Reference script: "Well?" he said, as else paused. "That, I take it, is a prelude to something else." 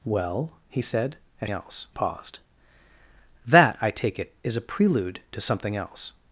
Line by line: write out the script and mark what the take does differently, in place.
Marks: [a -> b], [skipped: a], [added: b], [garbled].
"Well?" he said, as else paused. "That, I take it, is a prelude to something else."